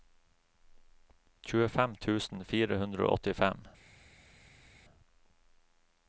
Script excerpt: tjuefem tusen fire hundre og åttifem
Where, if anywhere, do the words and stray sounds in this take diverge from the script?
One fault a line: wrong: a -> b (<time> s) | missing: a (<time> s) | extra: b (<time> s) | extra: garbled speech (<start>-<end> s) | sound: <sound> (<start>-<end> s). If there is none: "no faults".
no faults